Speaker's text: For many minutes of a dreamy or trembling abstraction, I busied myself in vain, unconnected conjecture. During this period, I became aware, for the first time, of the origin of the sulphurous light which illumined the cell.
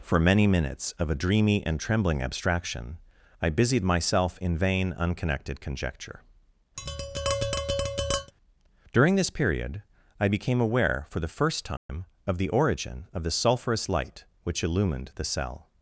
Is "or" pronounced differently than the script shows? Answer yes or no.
yes